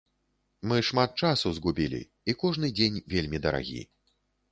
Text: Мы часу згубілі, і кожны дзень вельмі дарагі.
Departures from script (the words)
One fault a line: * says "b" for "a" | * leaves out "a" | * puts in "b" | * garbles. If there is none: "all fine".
* puts in "шмат"